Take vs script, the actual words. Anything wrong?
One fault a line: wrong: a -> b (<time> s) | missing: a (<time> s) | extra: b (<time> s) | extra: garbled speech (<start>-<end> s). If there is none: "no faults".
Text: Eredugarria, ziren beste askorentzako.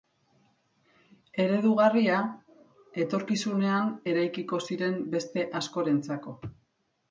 extra: etorkizunean eraikiko (3.0 s)